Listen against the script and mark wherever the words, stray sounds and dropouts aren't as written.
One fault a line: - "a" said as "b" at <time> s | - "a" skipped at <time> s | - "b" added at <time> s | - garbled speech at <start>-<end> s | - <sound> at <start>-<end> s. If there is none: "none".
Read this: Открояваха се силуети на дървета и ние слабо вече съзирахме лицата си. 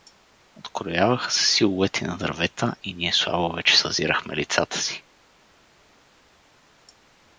none